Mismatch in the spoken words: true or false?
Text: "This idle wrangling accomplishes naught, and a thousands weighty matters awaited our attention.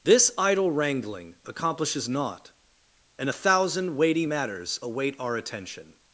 true